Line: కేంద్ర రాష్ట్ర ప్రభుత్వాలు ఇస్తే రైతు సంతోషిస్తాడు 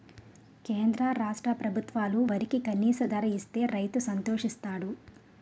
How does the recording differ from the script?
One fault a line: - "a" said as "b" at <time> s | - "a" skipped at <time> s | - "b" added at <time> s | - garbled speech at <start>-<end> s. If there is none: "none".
- "వరికి కనీస ధర" added at 2.3 s